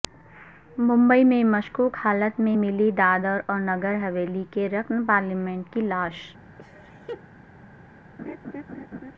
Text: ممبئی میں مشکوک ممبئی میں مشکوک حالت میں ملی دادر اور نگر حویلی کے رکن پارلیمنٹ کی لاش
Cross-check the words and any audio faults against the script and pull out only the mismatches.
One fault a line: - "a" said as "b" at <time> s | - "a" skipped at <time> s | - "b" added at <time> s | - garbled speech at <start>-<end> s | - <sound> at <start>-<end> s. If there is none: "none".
- "ممبئی میں مشکوک" skipped at 2.0 s
- laugh at 6.6-7.2 s
- laugh at 8.2-9.1 s